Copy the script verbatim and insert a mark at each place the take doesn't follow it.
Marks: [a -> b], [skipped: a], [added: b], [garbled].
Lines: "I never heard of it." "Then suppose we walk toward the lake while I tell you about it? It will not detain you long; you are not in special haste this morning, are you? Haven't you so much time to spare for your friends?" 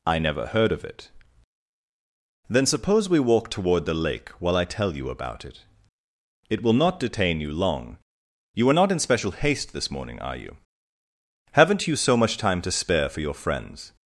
"I never heard of it." "Then suppose we walk toward the lake while I tell you about it? It will not detain you long; you are not in special haste this morning, are you? Haven't you so much time to spare for your friends?"